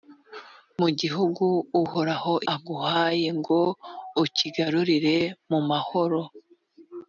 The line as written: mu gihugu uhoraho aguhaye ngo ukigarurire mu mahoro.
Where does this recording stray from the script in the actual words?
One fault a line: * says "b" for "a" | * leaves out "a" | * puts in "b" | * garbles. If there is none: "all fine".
all fine